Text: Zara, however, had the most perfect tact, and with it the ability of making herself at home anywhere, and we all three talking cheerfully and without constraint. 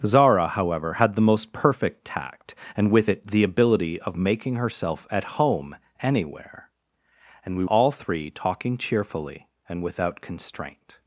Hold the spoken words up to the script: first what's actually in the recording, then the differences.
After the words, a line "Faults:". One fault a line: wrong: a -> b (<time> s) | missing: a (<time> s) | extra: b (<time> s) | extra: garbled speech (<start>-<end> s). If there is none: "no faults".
Zara, however, had the most perfect tact, and with it the ability of making herself at home anywhere, and we all three talking cheerfully and without constraint.
Faults:
no faults